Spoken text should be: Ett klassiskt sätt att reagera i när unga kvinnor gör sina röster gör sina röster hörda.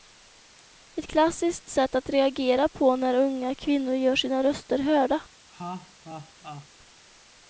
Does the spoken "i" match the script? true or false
false